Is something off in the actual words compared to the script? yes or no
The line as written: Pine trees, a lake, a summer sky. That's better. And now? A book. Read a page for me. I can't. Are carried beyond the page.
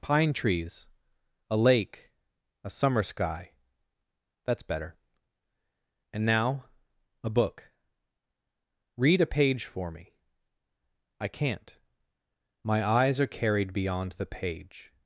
yes